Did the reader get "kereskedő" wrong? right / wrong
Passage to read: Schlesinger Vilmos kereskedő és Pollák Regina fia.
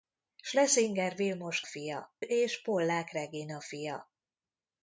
wrong